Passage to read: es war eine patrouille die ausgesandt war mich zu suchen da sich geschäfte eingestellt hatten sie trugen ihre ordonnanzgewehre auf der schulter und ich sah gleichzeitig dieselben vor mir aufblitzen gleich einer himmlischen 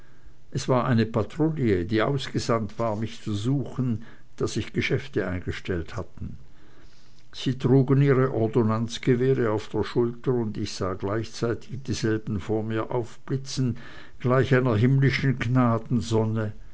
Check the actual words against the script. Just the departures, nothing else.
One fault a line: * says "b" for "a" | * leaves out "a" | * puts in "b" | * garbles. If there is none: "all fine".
all fine